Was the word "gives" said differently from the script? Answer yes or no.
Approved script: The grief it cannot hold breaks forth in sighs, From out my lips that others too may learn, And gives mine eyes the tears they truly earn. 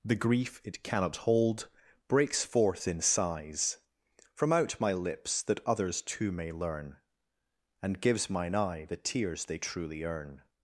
no